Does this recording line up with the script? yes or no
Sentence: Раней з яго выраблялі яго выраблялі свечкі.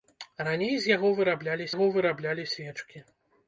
yes